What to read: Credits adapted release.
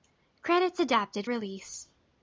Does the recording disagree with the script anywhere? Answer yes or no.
no